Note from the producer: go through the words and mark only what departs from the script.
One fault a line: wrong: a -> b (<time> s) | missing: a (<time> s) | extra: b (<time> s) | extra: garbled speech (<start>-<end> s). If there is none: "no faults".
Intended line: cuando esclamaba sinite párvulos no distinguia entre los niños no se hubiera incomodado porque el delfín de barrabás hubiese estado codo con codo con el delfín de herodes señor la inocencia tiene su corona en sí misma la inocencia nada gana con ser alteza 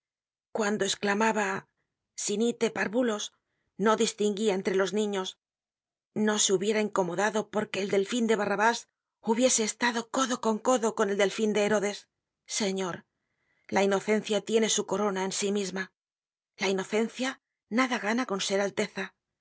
no faults